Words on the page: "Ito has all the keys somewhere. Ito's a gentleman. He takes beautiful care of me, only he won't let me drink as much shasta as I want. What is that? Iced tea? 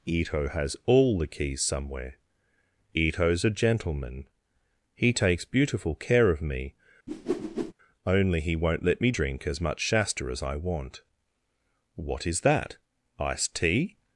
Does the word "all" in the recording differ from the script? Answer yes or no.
no